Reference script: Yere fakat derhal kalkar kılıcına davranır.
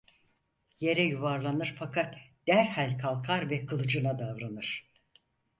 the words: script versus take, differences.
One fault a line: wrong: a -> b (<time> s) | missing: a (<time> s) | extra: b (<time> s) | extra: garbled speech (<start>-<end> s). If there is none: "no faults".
extra: yuvarlanır (1.0 s)
extra: ve (3.5 s)